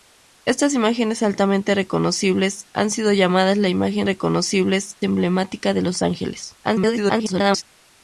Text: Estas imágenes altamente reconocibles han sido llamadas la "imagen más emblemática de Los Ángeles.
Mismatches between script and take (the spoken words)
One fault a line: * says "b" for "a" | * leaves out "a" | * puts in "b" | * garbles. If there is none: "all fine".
* says "reconocibles" for "más"
* garbles